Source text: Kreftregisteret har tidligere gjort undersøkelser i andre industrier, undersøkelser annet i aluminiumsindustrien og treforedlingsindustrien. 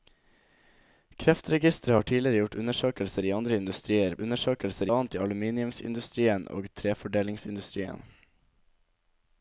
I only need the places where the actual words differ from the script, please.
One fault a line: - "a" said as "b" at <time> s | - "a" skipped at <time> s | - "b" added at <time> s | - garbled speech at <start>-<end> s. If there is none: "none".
none